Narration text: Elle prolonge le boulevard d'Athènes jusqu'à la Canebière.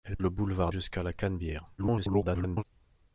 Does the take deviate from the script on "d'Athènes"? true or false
true